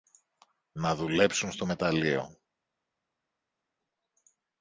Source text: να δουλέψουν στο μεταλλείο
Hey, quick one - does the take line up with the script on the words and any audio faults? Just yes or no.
yes